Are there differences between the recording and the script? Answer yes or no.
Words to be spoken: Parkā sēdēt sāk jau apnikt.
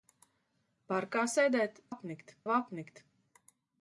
yes